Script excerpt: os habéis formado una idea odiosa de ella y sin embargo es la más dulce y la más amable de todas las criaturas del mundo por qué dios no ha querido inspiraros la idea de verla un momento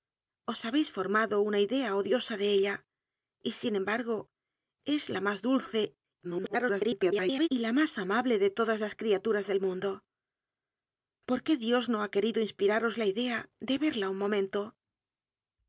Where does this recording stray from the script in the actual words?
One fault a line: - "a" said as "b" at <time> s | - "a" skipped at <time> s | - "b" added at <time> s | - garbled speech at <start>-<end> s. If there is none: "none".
- garbled speech at 6.2-7.5 s